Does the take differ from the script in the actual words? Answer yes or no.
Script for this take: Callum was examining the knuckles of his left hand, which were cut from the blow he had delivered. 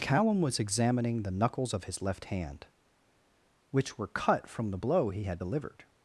no